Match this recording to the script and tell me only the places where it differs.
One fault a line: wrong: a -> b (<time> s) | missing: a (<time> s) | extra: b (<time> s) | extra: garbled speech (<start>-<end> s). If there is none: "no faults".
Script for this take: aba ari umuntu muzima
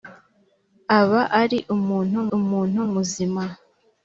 extra: umuntu (2.4 s)